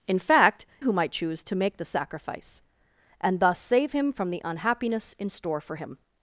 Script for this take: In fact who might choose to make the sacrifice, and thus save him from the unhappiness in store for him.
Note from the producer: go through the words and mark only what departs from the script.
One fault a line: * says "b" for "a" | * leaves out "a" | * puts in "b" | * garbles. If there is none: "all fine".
all fine